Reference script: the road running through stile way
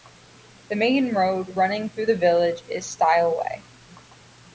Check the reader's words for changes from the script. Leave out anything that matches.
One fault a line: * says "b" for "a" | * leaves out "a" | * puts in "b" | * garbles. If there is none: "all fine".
* puts in "main"
* puts in "the village is"